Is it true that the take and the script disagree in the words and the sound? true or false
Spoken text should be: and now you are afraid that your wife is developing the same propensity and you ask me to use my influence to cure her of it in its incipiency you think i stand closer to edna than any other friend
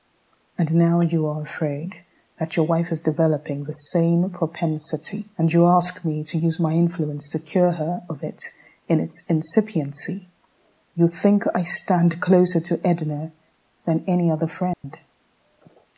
true